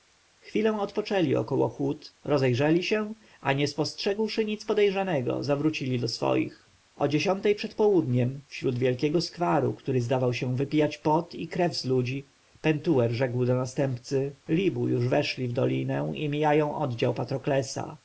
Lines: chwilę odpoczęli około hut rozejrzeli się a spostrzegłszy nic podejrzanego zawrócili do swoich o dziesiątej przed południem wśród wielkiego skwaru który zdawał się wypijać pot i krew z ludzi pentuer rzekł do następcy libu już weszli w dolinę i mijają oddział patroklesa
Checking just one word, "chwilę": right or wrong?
right